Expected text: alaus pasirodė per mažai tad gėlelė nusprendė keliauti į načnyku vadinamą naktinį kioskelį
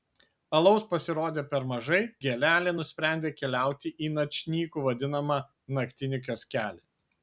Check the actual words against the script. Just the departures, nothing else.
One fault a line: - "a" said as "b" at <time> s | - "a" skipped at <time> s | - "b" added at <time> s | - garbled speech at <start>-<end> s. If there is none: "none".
- "tad" skipped at 2.0 s